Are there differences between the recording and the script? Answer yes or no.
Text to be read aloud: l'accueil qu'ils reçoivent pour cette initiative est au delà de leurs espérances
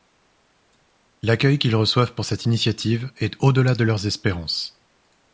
no